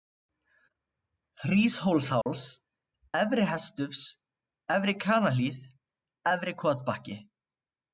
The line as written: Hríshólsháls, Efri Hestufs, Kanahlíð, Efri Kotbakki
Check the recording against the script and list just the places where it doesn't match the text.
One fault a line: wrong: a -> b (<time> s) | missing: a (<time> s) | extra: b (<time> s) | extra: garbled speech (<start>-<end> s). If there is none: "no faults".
extra: Efri (4.8 s)